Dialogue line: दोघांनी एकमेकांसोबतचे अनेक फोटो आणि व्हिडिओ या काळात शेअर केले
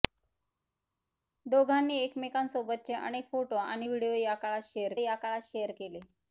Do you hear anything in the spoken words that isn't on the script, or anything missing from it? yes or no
yes